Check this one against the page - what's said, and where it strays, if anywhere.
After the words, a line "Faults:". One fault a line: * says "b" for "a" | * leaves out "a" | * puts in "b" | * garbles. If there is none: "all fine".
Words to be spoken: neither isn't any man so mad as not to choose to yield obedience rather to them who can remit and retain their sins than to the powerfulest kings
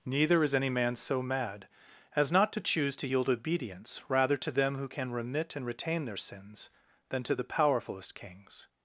neither is any man so mad as not to choose to yield obedience rather to them who can remit and retain their sins than to the powerfulest kings
Faults:
* says "is" for "isn't"